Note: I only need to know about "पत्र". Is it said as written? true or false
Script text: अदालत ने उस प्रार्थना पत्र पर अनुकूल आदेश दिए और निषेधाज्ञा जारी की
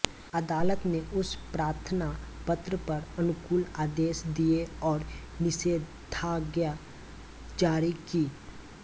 true